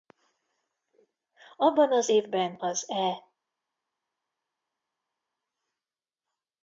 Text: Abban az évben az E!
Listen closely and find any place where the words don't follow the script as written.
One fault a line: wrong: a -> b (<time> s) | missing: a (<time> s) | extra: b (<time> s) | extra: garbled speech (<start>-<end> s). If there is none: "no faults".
no faults